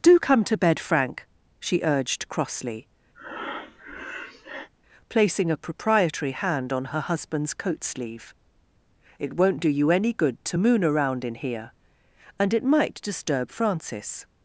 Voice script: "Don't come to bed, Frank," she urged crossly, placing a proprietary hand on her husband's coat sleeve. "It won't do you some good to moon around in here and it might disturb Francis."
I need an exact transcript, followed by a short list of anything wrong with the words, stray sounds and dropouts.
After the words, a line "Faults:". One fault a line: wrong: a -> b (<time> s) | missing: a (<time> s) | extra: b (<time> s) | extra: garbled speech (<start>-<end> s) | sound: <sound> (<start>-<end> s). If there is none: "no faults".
"Do come to bed, Frank," she urged crossly, placing a proprietary hand on her husband's coat sleeve. "It won't do you any good to moon around in here and it might disturb Francis."
Faults:
wrong: Don't -> Do (0.0 s)
sound: breath (3.1-4.7 s)
wrong: some -> any (9.9 s)